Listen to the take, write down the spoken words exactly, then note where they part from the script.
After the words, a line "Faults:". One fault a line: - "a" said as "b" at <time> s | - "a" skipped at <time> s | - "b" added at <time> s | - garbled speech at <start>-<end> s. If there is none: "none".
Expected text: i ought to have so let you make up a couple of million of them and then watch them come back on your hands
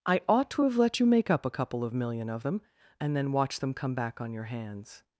i ought to have let you make up a couple of million of them and then watch them come back on your hands
Faults:
- "so" skipped at 0.8 s